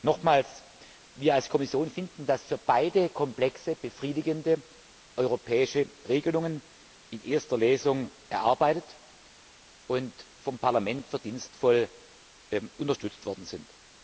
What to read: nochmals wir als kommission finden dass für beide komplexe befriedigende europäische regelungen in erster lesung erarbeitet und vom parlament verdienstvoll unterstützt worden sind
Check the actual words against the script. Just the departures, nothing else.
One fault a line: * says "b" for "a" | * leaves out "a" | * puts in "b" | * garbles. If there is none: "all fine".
all fine